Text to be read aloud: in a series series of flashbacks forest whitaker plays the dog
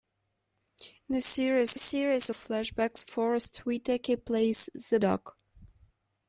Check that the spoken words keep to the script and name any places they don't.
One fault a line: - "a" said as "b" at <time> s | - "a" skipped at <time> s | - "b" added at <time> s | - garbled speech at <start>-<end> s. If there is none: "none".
none